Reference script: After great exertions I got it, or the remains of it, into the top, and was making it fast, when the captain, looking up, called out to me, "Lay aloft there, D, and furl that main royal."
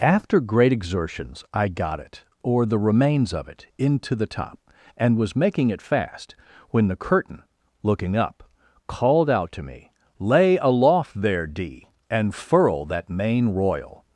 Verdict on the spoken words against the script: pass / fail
fail